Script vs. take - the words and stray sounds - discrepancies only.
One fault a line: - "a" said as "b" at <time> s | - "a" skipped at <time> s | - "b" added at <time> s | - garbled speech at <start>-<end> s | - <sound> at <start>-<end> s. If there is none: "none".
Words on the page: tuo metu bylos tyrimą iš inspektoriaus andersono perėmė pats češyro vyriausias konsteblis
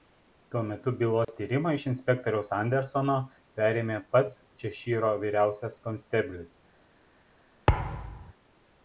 - dropout at 1.2-1.3 s
- thud at 7.7-8.3 s